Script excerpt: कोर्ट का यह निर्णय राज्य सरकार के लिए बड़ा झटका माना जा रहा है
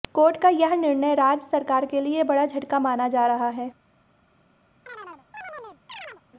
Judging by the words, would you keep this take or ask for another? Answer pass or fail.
pass